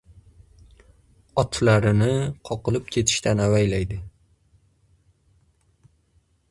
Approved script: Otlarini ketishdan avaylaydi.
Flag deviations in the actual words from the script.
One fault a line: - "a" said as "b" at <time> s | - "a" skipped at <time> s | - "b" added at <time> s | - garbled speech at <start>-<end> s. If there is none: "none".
- "qoqilib" added at 2.5 s